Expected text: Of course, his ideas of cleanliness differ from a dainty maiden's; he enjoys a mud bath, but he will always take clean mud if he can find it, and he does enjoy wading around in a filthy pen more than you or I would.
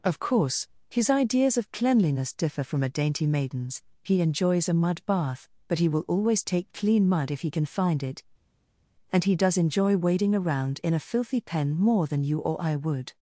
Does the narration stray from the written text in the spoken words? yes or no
no